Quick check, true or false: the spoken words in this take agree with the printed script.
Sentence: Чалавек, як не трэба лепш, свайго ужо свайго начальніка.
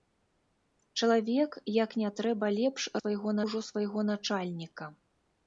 true